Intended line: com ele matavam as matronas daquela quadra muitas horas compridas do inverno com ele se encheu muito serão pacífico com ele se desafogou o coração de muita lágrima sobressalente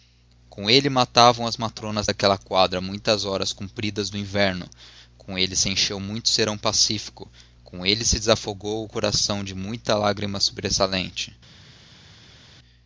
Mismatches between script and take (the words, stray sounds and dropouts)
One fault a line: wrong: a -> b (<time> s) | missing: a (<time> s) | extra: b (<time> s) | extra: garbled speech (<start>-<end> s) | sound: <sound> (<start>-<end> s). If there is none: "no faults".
no faults